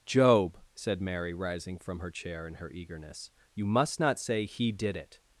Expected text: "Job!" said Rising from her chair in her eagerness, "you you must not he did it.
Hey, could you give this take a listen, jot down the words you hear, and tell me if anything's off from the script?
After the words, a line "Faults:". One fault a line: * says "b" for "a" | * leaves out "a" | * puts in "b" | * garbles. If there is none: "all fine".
"Job!" said Mary, rising from her chair in her eagerness, "you must not say he did it.
Faults:
* puts in "Mary"
* leaves out "you"
* puts in "say"